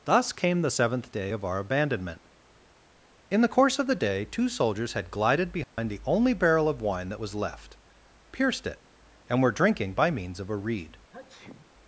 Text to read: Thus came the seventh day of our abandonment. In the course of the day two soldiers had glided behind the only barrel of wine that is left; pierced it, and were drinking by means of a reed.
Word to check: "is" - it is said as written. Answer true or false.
false